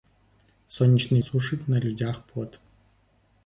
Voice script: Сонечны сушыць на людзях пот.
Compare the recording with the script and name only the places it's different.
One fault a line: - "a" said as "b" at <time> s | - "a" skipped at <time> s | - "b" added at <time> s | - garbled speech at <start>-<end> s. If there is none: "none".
none